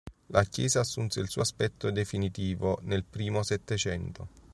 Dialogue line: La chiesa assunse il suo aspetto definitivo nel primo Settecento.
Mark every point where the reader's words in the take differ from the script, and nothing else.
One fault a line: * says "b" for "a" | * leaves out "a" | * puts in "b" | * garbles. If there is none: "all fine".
all fine